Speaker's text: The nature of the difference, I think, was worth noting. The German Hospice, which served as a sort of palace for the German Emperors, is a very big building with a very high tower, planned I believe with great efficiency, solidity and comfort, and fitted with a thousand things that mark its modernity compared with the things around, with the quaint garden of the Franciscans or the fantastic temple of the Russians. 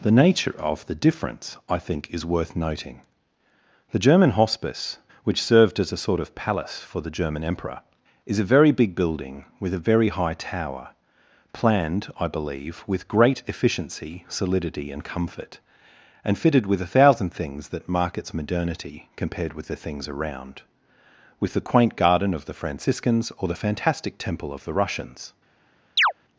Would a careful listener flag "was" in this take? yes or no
yes